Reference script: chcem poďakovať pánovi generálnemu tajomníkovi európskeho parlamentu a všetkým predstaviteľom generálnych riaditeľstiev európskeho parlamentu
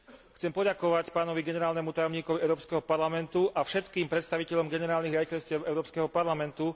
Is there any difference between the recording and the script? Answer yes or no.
no